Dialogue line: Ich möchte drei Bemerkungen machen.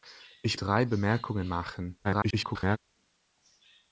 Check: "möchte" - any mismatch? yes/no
yes